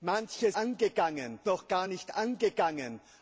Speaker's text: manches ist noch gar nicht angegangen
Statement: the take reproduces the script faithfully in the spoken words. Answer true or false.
false